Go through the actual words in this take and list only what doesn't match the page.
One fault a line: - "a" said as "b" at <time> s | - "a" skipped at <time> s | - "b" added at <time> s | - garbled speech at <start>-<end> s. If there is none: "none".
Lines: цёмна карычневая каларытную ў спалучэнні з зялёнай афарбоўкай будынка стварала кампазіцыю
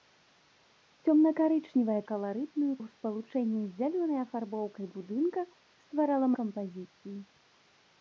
none